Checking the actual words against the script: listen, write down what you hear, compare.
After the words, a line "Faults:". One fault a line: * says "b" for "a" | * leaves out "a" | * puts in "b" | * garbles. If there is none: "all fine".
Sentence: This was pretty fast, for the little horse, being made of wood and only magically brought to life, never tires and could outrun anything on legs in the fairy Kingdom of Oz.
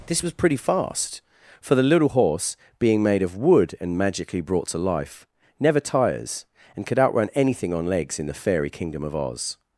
This was pretty fast, for the little horse, being made of wood and magically brought to life, never tires and could outrun anything on legs in the fairy Kingdom of Oz.
Faults:
* leaves out "only"